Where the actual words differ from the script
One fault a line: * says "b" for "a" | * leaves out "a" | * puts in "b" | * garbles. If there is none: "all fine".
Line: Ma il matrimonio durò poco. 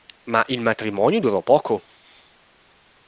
all fine